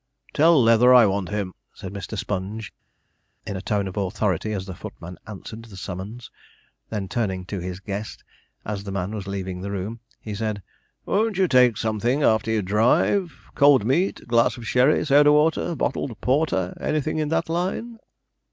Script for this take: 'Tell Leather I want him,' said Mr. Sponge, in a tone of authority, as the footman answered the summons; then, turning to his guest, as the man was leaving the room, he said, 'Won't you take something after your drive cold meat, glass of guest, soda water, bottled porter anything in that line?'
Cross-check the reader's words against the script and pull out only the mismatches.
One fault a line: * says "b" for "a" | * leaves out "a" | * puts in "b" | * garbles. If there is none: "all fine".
* says "sherry" for "guest"